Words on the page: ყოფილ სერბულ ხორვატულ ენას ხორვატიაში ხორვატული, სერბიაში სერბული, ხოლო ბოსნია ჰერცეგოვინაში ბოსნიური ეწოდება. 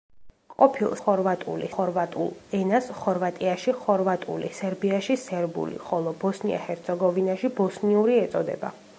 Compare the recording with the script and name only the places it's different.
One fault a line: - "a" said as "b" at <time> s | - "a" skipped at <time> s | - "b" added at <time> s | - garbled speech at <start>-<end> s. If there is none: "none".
- "სერბულ" said as "ხორვატული" at 1.0 s